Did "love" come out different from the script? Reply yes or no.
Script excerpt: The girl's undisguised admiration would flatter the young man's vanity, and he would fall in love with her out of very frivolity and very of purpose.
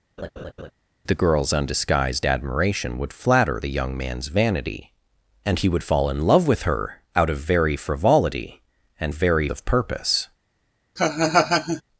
no